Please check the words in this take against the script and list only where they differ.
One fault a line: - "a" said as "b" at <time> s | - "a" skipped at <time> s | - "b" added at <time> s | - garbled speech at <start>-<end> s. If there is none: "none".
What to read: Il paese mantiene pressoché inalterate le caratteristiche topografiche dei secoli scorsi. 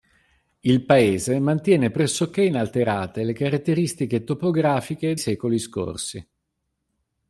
- "dei" skipped at 5.2 s